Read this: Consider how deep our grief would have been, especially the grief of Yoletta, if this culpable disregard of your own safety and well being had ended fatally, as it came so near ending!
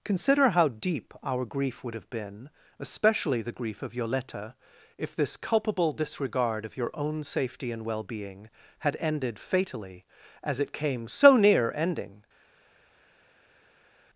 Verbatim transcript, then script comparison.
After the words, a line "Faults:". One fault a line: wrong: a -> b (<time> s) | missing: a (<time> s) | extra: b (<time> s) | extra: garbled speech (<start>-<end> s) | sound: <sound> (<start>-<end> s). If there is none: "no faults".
Consider how deep our grief would have been, especially the grief of Yoletta, if this culpable disregard of your own safety and well being had ended fatally, as it came so near ending!
Faults:
no faults